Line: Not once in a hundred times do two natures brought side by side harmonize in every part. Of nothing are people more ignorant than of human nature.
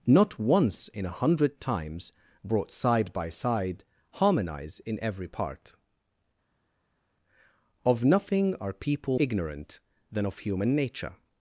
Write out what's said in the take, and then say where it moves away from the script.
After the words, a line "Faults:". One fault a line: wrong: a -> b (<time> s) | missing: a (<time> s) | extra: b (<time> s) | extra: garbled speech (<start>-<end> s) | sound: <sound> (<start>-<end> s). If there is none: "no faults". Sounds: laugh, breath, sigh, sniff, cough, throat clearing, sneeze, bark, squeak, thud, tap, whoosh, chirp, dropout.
Not once in a hundred times brought side by side harmonize in every part. Of nothing are people ignorant than of human nature.
Faults:
missing: do two natures (2.1 s)
missing: more (9.2 s)